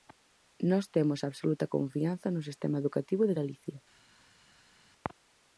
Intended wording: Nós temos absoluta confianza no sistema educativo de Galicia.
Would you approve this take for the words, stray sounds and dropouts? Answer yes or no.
yes